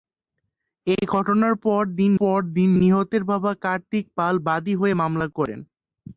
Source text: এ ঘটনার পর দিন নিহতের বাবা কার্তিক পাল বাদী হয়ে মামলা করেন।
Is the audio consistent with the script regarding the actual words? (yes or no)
no